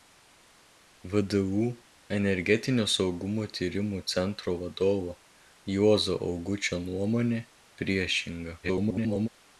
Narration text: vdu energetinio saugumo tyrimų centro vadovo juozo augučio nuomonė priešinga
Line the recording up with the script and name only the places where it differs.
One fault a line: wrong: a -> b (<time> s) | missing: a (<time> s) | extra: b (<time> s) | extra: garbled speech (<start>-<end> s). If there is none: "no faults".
extra: garbled speech (8.6-9.3 s)